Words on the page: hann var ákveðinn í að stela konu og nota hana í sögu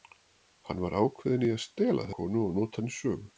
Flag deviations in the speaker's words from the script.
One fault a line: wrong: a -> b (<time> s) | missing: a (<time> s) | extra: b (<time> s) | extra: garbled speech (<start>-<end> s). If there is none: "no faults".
no faults